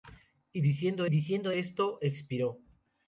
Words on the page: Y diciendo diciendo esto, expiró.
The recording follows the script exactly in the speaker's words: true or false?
true